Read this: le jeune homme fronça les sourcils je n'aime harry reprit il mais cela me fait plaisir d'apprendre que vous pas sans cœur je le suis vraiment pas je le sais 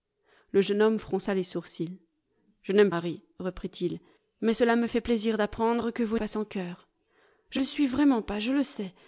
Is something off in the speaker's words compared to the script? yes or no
no